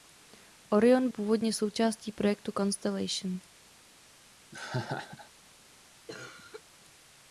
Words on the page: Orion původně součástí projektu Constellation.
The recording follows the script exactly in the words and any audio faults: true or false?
false